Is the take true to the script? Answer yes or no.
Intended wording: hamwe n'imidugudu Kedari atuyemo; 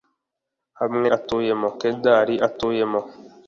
no